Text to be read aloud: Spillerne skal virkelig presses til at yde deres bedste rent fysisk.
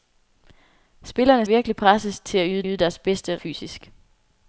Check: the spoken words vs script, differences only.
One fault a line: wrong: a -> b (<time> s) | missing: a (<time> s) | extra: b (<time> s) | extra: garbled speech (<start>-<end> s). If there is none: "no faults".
missing: skal (1.4 s)
extra: yde (2.6 s)
missing: rent (3.4 s)